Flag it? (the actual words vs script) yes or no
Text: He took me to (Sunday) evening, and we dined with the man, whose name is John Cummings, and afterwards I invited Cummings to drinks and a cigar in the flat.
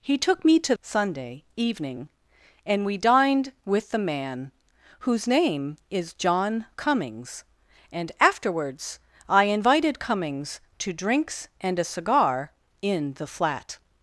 no